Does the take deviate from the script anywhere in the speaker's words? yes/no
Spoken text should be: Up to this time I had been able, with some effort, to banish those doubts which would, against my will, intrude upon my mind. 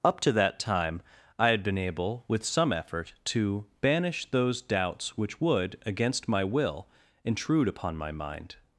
yes